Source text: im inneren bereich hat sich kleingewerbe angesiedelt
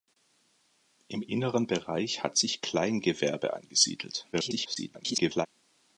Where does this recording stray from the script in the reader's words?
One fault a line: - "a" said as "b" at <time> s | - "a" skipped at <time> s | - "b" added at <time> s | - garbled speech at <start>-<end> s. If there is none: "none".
- garbled speech at 4.3-5.5 s